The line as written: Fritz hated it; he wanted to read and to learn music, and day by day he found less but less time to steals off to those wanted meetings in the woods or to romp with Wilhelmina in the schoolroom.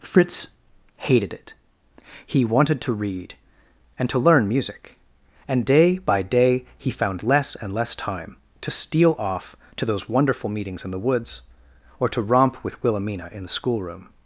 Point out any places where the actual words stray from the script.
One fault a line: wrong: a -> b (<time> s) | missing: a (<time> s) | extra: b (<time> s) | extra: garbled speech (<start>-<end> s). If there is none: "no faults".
wrong: but -> and (7.5 s)
wrong: steals -> steal (8.7 s)
wrong: wanted -> wonderful (10.1 s)